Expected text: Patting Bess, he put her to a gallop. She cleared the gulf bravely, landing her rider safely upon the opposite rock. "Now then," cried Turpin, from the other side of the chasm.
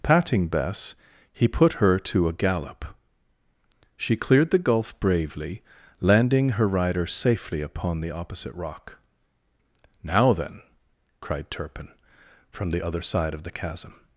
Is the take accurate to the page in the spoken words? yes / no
yes